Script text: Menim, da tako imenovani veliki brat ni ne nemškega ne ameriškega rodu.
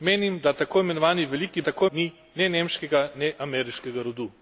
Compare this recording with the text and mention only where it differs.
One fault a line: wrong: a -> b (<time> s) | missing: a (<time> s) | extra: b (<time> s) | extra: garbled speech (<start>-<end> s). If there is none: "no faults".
wrong: brat -> tako (1.6 s)